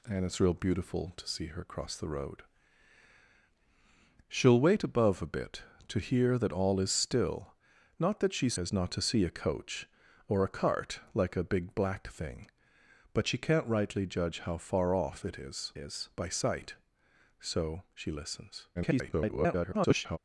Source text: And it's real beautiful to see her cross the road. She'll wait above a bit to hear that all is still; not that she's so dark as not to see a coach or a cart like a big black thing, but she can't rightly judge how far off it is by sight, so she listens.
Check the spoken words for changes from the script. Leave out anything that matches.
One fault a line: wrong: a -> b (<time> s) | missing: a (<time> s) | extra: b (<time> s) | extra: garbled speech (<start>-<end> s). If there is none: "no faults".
missing: so dark (8.6 s)
extra: is (15.8 s)
extra: garbled speech (18.7-20.2 s)